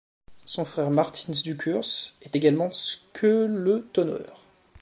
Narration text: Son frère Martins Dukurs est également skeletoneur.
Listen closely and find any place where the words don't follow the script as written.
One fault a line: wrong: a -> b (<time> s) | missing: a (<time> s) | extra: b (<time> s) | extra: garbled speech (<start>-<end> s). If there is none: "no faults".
no faults